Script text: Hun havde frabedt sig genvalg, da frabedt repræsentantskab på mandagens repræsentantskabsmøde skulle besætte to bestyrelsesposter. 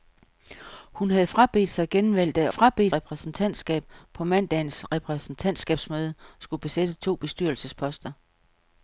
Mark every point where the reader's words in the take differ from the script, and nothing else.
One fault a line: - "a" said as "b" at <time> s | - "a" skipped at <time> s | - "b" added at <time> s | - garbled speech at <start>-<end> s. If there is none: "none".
none